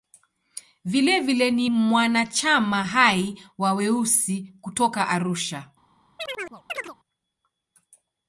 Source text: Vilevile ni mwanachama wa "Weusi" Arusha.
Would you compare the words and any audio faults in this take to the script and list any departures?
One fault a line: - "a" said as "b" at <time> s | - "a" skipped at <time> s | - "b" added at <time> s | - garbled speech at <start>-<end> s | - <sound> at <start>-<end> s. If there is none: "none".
- "hai" added at 2.8 s
- "kutoka" added at 4.6 s
- chirp at 6.2-7.0 s